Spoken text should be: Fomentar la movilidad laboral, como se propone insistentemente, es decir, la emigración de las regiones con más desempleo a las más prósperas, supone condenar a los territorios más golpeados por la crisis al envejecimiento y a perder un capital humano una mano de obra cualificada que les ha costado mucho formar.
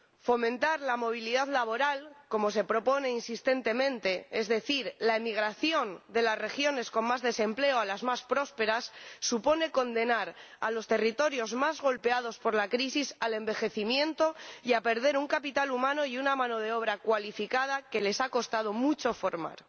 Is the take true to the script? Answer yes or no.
no